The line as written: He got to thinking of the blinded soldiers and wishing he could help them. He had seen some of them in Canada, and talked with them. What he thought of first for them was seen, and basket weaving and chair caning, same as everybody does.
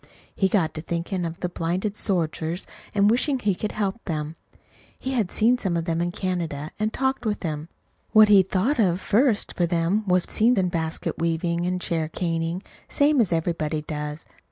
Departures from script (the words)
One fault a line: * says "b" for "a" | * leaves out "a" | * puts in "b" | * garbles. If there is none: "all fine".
all fine